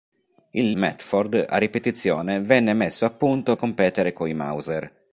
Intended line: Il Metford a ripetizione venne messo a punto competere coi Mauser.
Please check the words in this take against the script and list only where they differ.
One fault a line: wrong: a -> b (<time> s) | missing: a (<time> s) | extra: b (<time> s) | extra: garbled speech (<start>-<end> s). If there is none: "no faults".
no faults